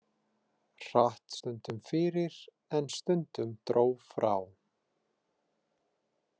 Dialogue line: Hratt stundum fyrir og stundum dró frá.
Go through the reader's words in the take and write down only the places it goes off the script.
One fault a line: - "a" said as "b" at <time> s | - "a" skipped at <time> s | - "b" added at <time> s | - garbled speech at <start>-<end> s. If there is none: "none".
- "og" said as "en" at 2.8 s